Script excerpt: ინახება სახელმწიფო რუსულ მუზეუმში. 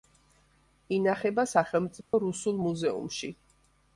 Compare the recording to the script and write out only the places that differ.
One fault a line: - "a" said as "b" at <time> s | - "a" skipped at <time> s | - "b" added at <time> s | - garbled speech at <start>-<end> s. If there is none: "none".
none